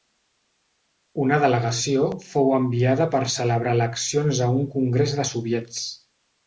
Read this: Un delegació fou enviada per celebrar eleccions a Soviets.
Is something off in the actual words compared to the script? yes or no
yes